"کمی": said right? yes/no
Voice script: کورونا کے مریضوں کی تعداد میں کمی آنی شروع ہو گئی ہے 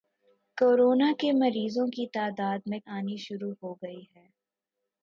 no